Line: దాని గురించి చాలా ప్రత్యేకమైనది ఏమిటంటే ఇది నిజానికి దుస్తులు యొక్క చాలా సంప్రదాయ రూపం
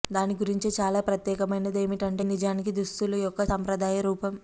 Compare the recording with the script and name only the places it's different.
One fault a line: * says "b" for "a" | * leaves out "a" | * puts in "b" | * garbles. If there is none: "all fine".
* leaves out "ఇది"
* leaves out "చాలా"